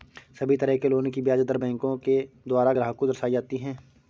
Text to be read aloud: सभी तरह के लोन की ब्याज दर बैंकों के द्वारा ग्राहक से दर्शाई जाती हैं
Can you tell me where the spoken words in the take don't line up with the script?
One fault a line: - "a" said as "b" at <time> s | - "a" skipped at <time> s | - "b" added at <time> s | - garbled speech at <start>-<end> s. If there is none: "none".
- "से" said as "को" at 3.0 s